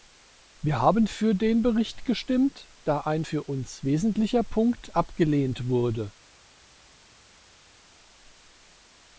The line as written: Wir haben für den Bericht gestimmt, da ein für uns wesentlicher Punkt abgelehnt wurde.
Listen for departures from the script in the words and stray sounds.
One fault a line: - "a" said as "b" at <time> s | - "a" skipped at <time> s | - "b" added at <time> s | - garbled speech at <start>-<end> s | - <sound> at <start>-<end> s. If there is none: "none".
none